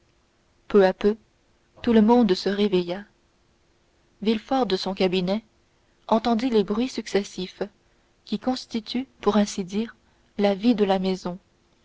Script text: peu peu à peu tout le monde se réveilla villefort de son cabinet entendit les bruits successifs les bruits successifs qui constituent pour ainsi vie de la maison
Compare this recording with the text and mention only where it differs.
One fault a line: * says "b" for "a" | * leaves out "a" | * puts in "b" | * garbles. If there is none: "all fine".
* leaves out "peu"
* leaves out "les bruits successifs"
* puts in "dire la"